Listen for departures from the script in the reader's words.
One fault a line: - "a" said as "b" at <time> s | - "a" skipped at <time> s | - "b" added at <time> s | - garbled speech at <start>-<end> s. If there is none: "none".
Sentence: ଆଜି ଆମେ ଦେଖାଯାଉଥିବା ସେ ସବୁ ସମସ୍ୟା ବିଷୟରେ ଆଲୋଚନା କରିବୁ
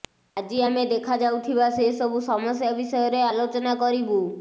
none